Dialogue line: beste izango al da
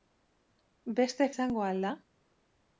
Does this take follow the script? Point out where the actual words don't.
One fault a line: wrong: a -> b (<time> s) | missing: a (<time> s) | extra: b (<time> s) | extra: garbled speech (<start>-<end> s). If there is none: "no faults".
no faults